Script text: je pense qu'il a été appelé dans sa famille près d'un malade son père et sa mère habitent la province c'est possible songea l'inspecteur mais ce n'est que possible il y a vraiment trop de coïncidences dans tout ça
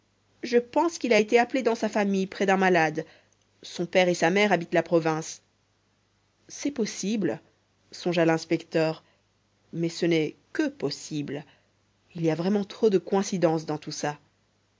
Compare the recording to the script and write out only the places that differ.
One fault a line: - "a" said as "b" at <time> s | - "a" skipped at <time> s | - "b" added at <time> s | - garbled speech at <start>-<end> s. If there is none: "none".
none